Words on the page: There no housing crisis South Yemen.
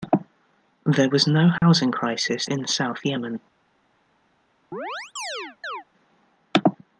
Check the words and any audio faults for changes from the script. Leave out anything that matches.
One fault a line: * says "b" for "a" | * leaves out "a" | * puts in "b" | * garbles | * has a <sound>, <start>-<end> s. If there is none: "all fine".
* puts in "was"
* has a dropout, 1.6-1.6 s
* puts in "in"
* has a chirp, 4.7-5.8 s